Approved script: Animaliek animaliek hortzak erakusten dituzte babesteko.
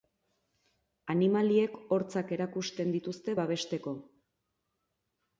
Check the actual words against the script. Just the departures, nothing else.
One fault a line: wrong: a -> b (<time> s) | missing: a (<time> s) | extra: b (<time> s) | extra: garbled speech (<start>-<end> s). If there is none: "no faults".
missing: animaliek (1.8 s)